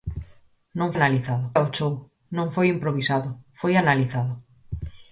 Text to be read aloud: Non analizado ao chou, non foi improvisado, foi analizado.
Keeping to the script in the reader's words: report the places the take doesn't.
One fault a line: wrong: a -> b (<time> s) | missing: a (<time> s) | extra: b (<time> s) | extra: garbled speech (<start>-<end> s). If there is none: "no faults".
no faults